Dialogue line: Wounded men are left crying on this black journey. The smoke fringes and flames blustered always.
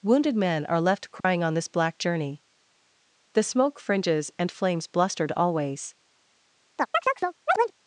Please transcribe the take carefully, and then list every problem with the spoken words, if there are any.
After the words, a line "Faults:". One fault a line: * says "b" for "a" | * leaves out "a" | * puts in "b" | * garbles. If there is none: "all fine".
Wounded men are left crying on this black journey. The smoke fringes and flames blustered always.
Faults:
all fine